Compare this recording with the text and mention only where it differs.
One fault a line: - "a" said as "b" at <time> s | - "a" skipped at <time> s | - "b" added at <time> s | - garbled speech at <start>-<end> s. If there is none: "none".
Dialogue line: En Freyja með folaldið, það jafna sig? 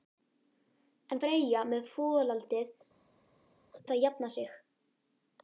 none